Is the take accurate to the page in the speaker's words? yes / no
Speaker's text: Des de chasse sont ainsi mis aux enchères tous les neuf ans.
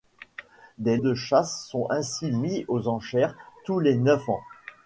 yes